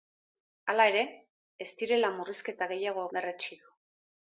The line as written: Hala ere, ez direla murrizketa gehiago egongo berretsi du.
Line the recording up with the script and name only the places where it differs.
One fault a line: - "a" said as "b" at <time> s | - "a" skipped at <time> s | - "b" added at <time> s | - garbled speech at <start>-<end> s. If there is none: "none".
- "egongo" skipped at 3.1 s